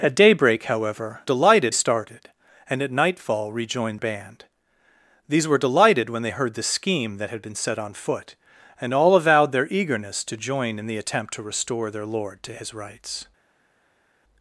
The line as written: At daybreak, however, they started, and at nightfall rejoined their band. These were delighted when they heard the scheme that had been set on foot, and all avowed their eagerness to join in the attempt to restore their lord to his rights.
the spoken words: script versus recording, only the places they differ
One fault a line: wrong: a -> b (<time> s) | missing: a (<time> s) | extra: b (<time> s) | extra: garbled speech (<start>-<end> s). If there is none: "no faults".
wrong: they -> delighted (1.2 s)
missing: their (4.0 s)